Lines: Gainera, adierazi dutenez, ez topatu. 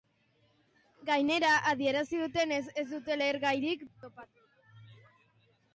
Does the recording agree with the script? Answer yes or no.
no